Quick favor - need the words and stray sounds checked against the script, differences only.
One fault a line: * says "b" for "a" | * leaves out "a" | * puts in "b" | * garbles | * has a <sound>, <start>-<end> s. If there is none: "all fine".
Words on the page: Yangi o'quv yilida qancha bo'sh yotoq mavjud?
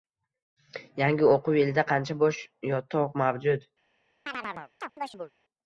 * has a chirp, 4.3-5.3 s